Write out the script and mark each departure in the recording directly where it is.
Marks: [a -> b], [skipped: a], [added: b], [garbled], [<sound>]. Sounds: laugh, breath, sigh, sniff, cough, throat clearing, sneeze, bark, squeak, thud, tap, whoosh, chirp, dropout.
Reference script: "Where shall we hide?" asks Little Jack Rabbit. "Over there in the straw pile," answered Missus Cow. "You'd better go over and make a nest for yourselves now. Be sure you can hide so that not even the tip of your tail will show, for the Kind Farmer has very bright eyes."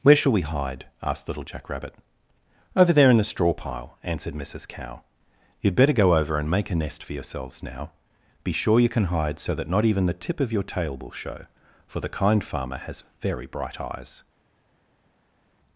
"Where shall we hide?" [asks -> asked] Little Jack Rabbit. "Over there in the straw pile," answered Missus Cow. "You'd better go over and make a nest for yourselves now. Be sure you can hide so that not even the tip of your tail will show, for the Kind Farmer has very bright eyes."